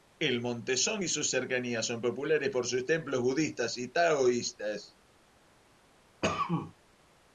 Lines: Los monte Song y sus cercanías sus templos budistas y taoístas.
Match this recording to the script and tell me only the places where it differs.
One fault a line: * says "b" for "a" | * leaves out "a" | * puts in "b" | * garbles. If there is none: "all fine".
* says "El" for "Los"
* puts in "son populares por"